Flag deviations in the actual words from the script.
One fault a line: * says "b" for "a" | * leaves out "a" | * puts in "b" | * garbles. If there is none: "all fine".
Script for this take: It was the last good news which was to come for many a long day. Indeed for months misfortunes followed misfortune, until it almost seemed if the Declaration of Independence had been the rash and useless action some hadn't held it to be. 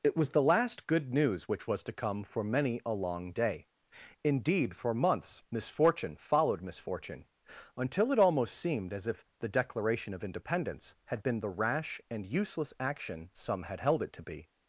* says "misfortune" for "misfortunes"
* puts in "as"
* says "had" for "hadn't"